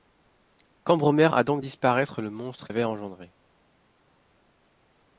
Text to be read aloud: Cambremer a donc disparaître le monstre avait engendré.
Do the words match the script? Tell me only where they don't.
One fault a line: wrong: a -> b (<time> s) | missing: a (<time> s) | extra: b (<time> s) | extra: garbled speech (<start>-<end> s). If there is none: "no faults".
no faults